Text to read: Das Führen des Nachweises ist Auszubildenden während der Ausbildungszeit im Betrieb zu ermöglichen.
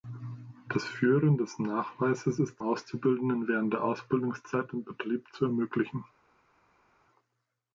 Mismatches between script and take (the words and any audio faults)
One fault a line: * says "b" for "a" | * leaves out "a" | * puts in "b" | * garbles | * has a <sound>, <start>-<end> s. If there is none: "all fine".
all fine